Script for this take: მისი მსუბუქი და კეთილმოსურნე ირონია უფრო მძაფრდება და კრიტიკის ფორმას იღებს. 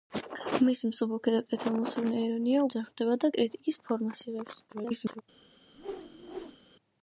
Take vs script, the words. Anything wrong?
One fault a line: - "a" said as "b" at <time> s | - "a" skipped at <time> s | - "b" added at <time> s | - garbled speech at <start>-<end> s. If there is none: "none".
- "უფრო" skipped at 2.6 s
- garbled speech at 4.7-5.2 s